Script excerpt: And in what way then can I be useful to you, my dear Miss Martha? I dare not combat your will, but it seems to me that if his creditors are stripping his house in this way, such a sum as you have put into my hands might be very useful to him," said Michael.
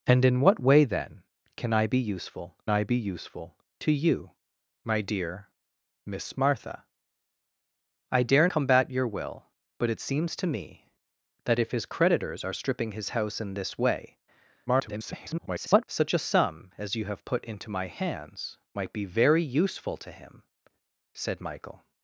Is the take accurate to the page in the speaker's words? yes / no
no